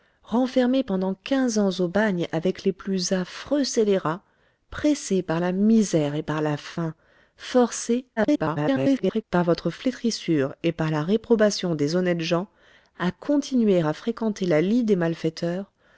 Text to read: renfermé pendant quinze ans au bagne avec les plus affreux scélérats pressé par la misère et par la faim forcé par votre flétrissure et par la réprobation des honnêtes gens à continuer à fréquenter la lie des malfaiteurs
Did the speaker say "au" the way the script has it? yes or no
yes